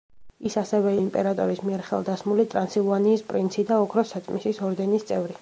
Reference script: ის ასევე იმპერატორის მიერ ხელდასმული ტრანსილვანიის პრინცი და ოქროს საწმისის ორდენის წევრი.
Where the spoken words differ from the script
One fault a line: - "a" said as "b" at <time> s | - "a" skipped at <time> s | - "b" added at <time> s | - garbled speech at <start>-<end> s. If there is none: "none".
none